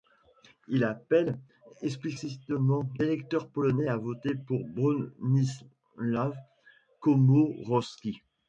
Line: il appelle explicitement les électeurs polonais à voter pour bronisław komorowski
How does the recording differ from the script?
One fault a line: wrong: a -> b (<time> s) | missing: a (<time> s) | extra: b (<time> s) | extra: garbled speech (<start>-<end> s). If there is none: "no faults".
missing: les (2.9 s)